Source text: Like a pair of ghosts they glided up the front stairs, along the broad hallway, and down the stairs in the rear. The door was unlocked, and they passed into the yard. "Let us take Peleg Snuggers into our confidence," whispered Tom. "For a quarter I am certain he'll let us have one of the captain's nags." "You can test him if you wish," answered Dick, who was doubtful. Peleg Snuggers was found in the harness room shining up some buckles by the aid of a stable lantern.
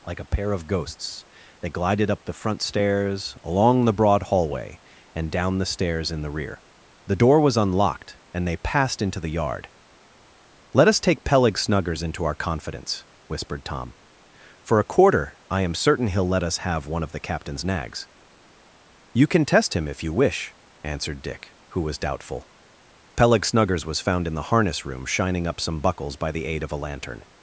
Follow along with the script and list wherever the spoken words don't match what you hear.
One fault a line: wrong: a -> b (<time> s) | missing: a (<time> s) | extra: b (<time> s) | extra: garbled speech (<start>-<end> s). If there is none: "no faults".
missing: stable (26.8 s)